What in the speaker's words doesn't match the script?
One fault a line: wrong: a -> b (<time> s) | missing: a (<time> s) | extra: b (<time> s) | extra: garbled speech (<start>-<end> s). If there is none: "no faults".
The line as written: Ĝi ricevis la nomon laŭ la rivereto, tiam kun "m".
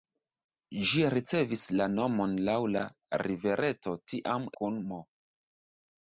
no faults